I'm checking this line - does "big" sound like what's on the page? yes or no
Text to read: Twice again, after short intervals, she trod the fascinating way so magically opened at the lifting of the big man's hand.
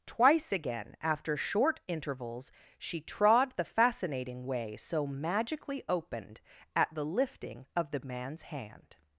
no